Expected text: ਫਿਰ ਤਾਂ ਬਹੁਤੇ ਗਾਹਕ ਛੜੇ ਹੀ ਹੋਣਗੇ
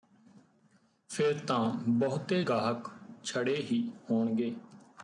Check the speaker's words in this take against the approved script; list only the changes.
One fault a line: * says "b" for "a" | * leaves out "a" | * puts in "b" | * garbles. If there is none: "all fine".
all fine